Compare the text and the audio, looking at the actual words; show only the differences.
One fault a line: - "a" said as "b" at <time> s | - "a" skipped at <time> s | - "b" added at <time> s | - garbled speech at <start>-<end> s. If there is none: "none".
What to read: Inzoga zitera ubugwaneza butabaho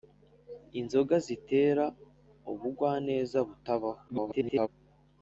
- garbled speech at 4.1-4.7 s